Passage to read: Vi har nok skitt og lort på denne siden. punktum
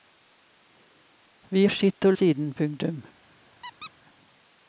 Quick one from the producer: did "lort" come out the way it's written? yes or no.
no